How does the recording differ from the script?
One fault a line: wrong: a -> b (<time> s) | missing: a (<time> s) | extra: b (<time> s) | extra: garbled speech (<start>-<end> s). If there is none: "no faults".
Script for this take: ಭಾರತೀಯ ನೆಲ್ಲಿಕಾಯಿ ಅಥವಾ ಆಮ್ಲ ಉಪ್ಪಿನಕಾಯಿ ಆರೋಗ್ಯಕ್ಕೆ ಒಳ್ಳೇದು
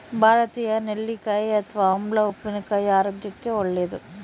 no faults